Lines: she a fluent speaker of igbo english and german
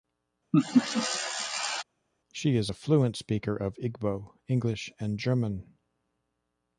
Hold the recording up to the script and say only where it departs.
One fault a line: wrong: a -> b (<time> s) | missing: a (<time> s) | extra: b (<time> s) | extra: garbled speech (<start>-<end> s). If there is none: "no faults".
extra: is (2.6 s)